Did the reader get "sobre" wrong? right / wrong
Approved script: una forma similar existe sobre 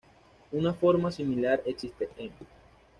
wrong